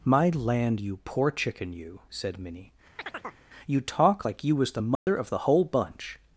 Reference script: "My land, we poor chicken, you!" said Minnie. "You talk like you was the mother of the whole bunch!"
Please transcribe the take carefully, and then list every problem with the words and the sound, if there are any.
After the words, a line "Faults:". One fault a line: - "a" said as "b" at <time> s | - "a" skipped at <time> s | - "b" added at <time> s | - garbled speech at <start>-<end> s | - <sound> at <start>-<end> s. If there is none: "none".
"My land, you poor chicken, you!" said Minnie. "You talk like you was the mother of the whole bunch!"
Faults:
- "we" said as "you" at 0.8 s
- chirp at 3.0-3.4 s
- dropout at 5.0-5.1 s